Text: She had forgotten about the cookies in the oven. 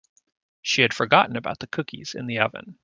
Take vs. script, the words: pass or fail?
pass